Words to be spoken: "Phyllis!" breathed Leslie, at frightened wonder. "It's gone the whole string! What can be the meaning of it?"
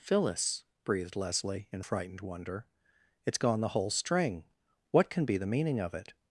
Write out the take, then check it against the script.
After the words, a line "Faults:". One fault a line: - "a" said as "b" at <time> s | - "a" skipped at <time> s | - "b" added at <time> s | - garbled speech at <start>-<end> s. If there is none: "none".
"Phyllis!" breathed Leslie, in frightened wonder. "It's gone the whole string! What can be the meaning of it?"
Faults:
- "at" said as "in" at 1.7 s